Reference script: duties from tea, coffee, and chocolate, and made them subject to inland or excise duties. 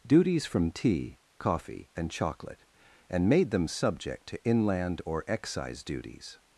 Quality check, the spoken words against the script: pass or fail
pass